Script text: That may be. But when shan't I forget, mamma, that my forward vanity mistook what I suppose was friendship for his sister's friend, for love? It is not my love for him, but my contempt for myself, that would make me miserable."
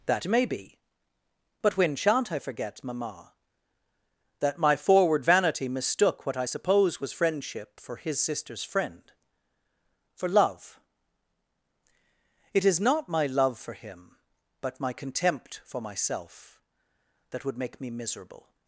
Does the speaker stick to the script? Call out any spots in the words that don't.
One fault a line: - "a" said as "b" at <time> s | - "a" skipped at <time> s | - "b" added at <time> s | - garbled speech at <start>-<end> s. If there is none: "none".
none